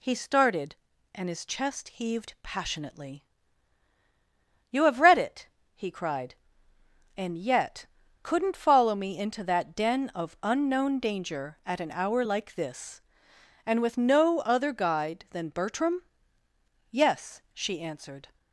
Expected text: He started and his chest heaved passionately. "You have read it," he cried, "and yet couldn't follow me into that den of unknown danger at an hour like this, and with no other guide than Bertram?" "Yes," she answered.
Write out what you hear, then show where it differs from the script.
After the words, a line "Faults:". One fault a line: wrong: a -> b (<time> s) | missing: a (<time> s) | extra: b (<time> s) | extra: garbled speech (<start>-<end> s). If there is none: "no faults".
He started and his chest heaved passionately. "You have read it," he cried, "and yet couldn't follow me into that den of unknown danger at an hour like this, and with no other guide than Bertram?" "Yes," she answered.
Faults:
no faults